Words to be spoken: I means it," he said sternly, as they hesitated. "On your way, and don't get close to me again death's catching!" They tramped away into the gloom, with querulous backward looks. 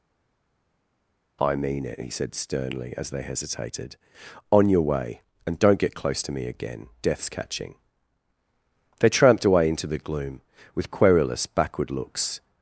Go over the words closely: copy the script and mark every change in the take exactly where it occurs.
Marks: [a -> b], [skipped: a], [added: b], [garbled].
I [means -> mean] it," he said sternly, as they hesitated. "On your way, and don't get close to me again death's catching!" They tramped away into the gloom, with querulous backward looks.